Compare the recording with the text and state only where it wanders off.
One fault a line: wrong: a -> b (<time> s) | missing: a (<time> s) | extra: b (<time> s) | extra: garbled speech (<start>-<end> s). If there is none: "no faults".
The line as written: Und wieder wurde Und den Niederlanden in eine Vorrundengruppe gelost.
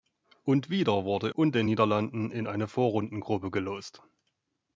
no faults